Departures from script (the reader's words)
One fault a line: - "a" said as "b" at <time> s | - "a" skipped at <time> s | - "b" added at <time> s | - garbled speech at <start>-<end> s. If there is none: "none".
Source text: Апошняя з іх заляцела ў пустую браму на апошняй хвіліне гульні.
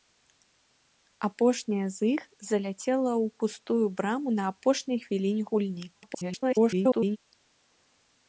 - garbled speech at 5.9-7.2 s